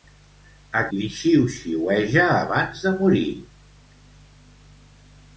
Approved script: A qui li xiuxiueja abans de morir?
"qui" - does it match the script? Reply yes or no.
no